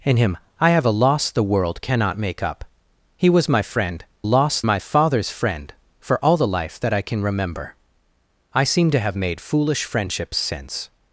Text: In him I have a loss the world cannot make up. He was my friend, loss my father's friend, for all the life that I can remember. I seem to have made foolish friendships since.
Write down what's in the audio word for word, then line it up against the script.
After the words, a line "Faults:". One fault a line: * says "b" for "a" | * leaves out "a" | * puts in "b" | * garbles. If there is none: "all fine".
In him I have a loss the world cannot make up. He was my friend, loss my father's friend, for all the life that I can remember. I seem to have made foolish friendships since.
Faults:
all fine